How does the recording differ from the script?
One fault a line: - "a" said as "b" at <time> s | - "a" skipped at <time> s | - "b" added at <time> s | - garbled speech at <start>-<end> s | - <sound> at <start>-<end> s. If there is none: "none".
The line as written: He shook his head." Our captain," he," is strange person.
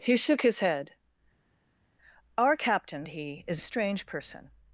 none